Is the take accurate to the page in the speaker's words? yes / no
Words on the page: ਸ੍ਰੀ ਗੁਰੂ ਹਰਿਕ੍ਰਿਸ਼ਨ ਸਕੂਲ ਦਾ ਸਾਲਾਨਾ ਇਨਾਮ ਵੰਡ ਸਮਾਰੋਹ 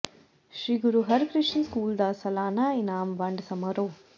yes